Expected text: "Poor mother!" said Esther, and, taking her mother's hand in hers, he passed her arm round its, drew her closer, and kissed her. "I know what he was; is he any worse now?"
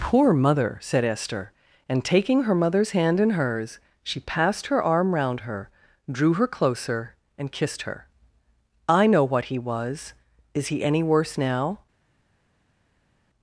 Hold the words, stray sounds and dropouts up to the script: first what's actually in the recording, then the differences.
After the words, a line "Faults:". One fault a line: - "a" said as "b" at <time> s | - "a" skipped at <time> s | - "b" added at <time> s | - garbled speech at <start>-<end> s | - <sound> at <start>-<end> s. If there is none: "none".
"Poor mother!" said Esther, and, taking her mother's hand in hers, she passed her arm round her, drew her closer, and kissed her. "I know what he was; is he any worse now?"
Faults:
- "he" said as "she" at 4.0 s
- "its" said as "her" at 5.4 s